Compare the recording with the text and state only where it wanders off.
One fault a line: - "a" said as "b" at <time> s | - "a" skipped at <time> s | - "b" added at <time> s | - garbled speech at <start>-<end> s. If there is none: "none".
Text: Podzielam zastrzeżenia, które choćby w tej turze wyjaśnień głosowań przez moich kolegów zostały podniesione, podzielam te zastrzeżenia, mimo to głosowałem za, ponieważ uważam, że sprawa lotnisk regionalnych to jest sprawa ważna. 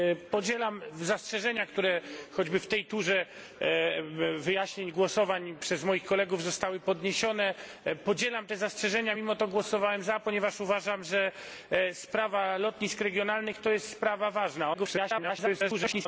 - garbled speech at 14.7-16.1 s